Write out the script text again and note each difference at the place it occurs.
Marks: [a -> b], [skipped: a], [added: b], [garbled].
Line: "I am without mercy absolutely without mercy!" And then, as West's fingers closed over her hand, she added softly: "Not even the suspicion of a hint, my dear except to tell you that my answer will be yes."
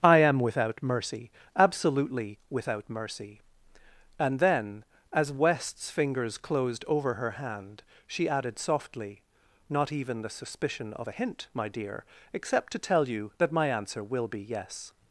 "I am without mercy absolutely without mercy!" And then, as West's fingers closed over her hand, she added softly: "Not even the suspicion of a hint, my dear except to tell you that my answer will be yes."